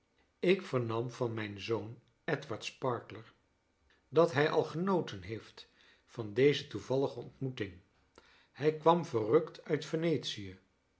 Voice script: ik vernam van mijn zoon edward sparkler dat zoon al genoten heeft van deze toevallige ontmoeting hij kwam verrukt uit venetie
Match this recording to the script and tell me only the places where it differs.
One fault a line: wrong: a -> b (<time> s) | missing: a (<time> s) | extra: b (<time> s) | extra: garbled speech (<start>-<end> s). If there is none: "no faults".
wrong: zoon -> hij (4.3 s)